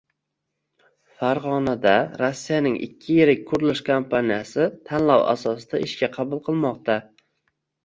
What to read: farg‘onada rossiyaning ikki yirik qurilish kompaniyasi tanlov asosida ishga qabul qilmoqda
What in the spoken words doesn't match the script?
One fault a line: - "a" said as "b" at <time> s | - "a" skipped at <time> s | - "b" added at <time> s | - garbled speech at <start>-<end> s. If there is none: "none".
none